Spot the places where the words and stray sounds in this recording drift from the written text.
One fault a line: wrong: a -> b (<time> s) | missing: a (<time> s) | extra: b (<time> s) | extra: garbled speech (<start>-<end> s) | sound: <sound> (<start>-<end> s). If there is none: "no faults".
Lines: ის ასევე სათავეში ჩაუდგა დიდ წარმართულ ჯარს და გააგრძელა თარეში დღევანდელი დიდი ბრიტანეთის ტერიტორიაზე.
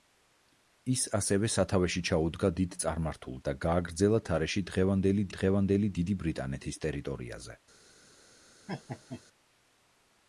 missing: ჯარს (3.4 s)
extra: დღევანდელი (5.4 s)
sound: laugh (8.7-9.2 s)